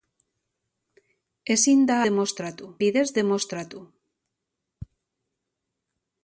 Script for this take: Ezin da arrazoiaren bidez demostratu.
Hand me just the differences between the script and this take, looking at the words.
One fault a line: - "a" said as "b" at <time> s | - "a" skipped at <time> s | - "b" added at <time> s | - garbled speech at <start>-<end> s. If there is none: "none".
- "arrazoiaren" said as "demostratu" at 2.1 s